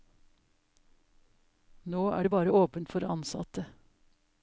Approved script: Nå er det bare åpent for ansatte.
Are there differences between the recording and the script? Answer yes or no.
no